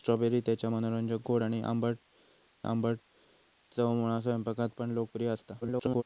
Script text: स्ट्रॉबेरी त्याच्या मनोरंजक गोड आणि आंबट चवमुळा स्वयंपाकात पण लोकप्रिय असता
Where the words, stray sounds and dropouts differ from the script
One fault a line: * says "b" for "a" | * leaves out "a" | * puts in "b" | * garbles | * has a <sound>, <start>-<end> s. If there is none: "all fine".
* puts in "आंबट"
* garbles